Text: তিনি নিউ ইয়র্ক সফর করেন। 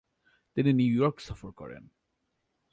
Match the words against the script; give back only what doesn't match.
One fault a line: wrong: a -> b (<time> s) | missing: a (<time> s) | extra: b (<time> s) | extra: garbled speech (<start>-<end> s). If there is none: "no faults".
no faults